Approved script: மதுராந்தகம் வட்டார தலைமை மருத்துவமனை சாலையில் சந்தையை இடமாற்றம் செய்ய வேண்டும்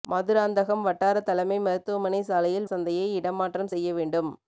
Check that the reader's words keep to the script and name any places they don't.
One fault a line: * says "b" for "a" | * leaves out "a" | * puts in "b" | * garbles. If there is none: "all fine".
all fine